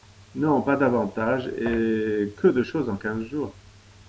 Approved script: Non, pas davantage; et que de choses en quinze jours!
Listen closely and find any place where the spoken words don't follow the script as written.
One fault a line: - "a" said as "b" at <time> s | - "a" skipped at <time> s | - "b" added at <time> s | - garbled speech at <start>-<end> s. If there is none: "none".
none